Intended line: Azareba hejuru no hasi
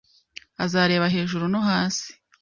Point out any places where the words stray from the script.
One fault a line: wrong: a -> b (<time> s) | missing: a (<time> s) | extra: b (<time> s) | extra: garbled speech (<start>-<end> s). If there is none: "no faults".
no faults